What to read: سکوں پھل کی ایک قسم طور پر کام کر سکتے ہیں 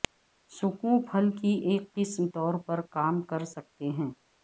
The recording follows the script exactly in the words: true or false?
true